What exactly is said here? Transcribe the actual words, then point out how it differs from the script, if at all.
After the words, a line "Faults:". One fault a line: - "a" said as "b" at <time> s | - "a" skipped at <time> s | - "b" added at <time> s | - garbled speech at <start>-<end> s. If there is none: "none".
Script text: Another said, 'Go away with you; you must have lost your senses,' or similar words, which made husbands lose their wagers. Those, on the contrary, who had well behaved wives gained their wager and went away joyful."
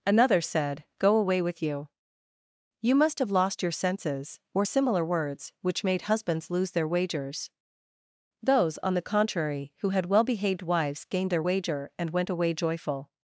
Another said, 'Go away with you; you must have lost your senses,' or similar words, which made husbands lose their wagers. Those, on the contrary, who had well behaved wives gained their wager and went away joyful."
Faults:
none